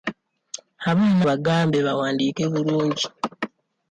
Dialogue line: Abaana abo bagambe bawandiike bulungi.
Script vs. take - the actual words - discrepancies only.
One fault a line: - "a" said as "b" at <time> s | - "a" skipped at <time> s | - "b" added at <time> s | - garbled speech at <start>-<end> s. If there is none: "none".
- "abo" skipped at 1.2 s